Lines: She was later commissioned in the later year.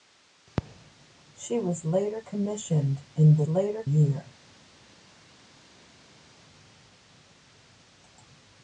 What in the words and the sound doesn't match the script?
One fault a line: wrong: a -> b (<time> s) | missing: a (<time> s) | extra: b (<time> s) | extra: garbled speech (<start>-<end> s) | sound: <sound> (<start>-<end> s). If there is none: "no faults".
no faults